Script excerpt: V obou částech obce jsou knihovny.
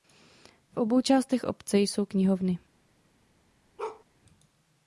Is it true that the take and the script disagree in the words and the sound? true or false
true